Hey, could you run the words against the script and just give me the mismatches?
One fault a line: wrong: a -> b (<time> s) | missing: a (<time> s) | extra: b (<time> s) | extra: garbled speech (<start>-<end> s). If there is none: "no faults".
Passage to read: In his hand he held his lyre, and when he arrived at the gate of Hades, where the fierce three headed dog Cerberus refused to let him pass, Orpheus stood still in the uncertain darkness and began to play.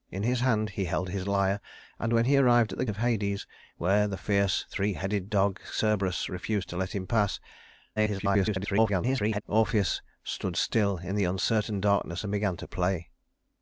missing: gate (2.9 s)
extra: garbled speech (8.0-9.4 s)